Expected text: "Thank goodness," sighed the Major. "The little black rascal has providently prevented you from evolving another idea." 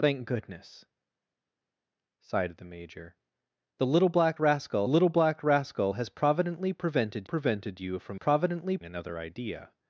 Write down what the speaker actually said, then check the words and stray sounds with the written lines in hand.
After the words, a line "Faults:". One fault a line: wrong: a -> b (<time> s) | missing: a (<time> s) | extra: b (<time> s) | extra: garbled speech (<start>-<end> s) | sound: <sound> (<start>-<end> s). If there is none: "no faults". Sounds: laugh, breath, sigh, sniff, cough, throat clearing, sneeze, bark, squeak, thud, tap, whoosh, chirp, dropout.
"Thank goodness," sighed the Major. "The little black rascal little black rascal has providently prevented prevented you from providently another idea."
Faults:
extra: little black rascal (4.9 s)
extra: prevented (7.2 s)
wrong: evolving -> providently (8.1 s)